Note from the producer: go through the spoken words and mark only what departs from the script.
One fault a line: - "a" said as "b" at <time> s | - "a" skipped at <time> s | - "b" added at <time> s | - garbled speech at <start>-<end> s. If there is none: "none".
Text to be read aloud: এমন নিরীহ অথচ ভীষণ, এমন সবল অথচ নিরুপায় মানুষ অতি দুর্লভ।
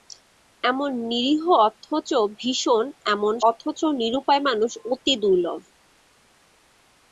- "সবল" skipped at 3.3 s